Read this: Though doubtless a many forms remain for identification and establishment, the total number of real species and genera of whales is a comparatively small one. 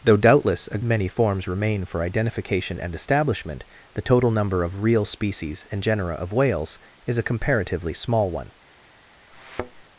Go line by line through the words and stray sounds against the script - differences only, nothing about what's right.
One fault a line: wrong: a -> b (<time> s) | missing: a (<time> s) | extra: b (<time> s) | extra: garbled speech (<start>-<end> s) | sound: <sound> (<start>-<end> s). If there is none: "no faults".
sound: thud (9.3-9.8 s)